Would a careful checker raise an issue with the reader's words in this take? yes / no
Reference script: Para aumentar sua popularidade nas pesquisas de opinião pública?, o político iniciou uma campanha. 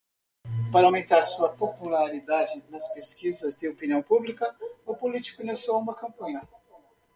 no